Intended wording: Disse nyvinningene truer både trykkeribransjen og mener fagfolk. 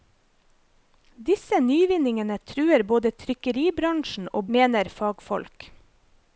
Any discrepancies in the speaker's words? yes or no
no